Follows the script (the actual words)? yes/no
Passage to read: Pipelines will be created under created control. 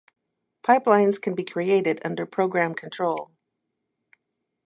no